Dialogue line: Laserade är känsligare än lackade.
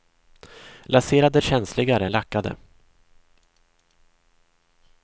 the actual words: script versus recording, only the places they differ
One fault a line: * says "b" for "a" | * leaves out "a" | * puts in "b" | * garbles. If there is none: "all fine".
all fine